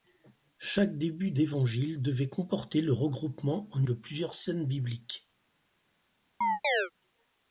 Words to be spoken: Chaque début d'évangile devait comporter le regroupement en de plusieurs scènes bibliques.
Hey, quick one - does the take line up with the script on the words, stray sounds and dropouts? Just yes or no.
no